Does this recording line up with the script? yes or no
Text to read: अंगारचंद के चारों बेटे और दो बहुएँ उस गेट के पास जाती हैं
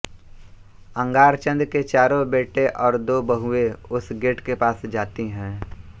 yes